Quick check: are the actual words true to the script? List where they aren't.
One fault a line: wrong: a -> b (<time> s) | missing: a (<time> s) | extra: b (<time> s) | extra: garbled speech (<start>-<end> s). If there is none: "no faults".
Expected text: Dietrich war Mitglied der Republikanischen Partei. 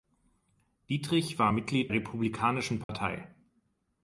missing: der (1.9 s)